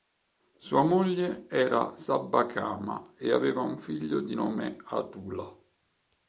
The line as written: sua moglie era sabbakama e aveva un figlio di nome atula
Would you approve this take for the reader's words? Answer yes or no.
yes